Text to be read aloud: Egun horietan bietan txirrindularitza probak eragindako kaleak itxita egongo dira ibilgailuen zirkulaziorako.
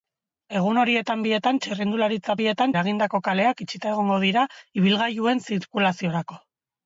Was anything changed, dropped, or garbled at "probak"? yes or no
yes